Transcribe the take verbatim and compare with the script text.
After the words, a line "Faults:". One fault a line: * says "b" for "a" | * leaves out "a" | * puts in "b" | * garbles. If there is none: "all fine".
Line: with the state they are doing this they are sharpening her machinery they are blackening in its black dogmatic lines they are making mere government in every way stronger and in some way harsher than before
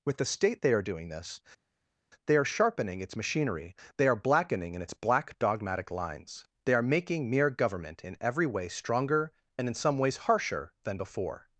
with the state they are doing this they are sharpening its machinery they are blackening in its black dogmatic lines they are making mere government in every way stronger and in some ways harsher than before
Faults:
* says "its" for "her"
* says "ways" for "way"